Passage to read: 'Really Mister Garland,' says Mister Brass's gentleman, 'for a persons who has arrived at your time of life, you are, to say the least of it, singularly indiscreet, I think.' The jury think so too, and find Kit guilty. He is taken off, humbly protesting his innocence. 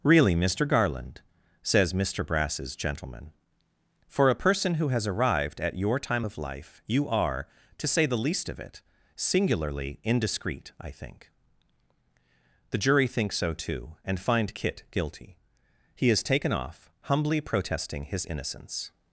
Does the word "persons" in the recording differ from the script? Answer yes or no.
yes